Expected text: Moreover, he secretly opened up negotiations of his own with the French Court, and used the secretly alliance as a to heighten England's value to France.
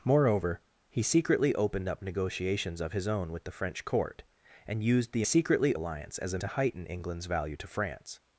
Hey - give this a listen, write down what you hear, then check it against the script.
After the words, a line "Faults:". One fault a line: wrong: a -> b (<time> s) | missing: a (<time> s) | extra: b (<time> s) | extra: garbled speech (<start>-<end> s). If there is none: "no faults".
Moreover, he secretly opened up negotiations of his own with the French Court, and used the secretly alliance as a to heighten England's value to France.
Faults:
no faults